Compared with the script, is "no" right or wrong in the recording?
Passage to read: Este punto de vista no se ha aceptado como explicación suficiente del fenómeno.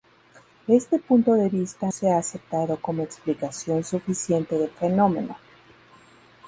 wrong